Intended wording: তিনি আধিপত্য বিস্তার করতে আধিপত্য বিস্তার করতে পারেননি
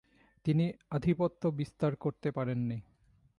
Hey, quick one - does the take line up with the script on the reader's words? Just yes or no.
no